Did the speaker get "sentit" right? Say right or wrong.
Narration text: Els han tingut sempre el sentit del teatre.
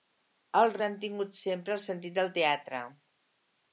right